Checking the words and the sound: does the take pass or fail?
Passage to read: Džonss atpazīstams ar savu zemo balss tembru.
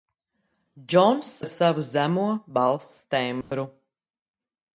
fail